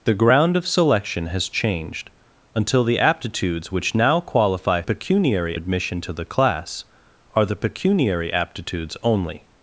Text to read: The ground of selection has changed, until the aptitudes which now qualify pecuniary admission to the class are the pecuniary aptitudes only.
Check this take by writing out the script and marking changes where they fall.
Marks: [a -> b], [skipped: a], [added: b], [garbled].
The ground of selection has changed, until the aptitudes which now qualify pecuniary admission to the class are the pecuniary aptitudes only.